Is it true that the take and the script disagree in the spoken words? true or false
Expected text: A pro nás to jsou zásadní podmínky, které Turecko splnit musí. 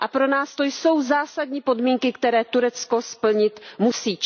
false